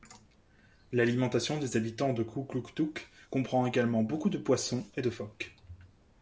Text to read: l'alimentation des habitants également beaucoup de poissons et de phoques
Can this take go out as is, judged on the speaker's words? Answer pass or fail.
fail